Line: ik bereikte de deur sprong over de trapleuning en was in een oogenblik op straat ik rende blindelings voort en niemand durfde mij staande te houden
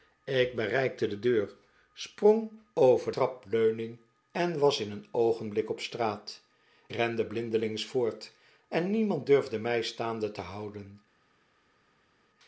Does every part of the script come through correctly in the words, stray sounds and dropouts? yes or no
no